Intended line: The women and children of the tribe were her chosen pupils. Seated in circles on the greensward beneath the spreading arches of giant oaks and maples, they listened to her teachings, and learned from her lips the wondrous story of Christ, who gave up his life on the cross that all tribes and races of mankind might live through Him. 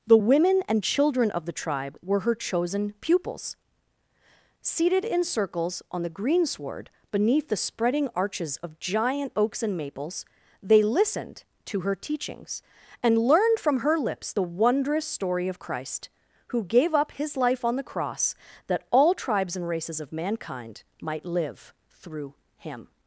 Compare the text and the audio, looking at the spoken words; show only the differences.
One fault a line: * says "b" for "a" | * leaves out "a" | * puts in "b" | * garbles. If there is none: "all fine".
all fine